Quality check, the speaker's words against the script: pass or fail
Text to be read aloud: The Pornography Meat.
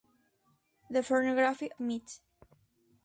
pass